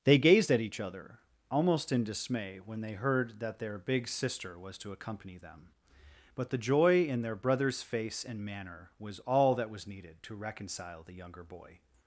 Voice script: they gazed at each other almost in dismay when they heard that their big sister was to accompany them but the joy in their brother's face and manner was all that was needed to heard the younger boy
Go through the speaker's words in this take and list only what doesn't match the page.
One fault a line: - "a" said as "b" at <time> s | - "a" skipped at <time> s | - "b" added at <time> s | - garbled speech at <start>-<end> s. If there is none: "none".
- "heard" said as "reconcile" at 10.4 s